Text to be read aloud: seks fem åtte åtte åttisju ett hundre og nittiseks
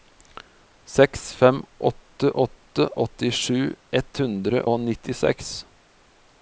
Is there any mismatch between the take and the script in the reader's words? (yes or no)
no